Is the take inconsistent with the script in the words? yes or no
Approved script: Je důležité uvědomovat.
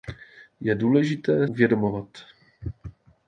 no